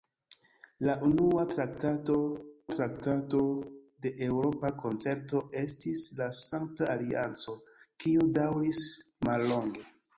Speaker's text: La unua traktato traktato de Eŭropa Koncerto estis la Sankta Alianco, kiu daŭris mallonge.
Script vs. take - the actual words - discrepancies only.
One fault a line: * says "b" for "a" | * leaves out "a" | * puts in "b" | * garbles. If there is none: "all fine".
all fine